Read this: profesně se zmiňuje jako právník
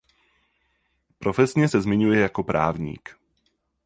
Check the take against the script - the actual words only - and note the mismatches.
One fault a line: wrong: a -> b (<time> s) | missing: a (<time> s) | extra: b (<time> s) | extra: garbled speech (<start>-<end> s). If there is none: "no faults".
no faults